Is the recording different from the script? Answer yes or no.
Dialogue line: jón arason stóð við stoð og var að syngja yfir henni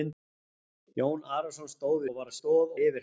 yes